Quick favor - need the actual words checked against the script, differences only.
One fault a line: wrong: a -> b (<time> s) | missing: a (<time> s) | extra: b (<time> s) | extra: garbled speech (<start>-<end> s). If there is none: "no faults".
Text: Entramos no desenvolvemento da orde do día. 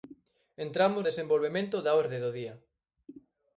missing: no (1.0 s)